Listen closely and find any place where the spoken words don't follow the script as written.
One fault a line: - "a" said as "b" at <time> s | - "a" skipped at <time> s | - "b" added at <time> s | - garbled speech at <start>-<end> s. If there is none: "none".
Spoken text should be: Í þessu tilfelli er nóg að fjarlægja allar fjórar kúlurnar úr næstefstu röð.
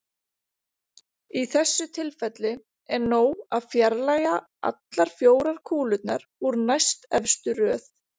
none